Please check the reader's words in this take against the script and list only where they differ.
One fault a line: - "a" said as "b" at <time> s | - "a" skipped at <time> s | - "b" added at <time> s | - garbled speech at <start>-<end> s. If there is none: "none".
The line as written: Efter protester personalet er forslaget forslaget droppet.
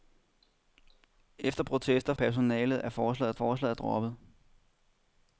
none